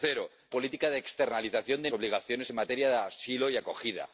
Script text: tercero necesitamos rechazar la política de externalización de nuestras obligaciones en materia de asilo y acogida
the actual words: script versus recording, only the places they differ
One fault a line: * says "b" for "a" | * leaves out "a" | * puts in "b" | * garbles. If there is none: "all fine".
* leaves out "necesitamos rechazar la"
* leaves out "nuestras"